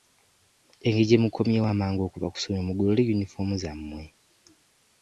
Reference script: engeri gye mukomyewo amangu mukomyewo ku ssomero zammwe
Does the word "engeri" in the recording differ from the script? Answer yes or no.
no